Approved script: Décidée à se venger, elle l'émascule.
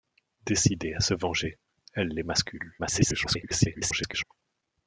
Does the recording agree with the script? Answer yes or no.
no